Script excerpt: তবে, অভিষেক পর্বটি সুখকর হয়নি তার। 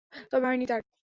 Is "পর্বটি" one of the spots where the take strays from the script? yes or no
yes